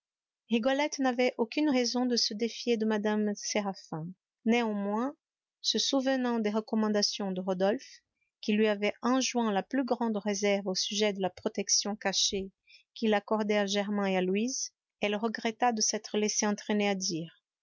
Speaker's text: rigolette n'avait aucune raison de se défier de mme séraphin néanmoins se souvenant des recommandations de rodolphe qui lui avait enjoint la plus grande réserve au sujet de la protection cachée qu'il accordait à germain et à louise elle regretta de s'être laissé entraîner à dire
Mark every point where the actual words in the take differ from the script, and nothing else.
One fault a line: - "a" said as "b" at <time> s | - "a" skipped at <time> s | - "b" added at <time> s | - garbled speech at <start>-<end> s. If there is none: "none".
none